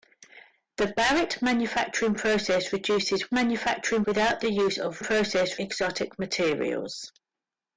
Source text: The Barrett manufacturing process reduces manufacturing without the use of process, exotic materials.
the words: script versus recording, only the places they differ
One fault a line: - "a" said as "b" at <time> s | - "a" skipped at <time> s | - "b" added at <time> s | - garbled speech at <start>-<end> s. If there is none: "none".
none